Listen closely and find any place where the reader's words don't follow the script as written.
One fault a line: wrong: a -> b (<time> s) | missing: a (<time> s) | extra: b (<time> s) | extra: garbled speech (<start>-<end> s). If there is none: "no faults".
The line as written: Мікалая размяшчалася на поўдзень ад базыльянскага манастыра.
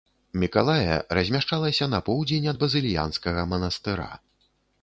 no faults